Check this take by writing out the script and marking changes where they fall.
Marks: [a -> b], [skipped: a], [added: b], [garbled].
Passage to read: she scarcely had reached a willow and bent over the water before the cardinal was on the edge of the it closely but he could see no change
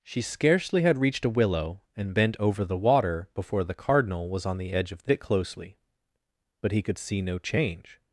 she scarcely had reached a willow and bent over the water before the cardinal was on the edge of the it closely but he could see no change